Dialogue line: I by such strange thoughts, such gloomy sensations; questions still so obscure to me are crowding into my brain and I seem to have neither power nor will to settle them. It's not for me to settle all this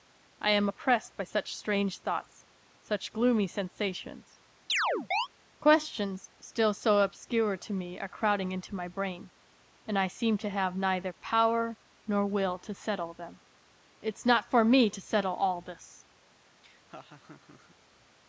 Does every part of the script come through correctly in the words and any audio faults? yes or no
no